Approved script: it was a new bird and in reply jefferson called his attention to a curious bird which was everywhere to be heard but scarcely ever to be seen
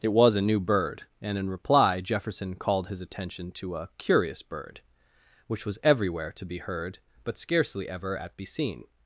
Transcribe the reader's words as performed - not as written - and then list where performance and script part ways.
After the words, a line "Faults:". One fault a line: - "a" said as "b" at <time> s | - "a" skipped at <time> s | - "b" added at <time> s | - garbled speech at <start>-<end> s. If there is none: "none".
it was a new bird and in reply jefferson called his attention to a curious bird which was everywhere to be heard but scarcely ever at be seen
Faults:
- "to" said as "at" at 8.2 s